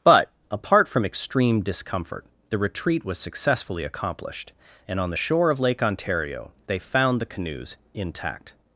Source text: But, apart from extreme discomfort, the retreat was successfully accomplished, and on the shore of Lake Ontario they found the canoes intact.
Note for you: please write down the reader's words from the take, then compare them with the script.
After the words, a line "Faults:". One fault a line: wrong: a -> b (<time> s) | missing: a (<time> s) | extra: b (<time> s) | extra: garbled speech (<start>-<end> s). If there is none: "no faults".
But, apart from extreme discomfort, the retreat was successfully accomplished, and on the shore of Lake Ontario they found the canoes intact.
Faults:
no faults